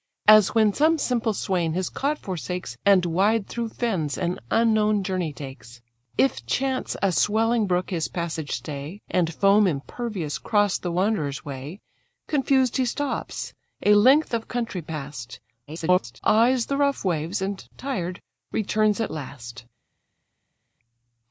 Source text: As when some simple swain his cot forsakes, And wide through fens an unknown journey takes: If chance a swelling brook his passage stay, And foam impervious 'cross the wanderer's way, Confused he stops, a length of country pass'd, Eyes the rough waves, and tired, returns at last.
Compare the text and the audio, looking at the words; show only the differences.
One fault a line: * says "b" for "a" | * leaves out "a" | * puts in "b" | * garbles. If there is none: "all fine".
* garbles